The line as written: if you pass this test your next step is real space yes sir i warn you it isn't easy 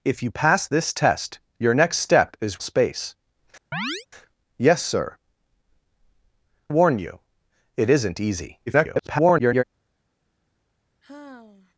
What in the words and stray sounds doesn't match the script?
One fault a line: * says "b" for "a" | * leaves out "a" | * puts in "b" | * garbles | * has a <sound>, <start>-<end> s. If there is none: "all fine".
* leaves out "real"
* has a chirp, 3.7-4.1 s
* leaves out "i"
* garbles
* has a sigh, 11.0-11.7 s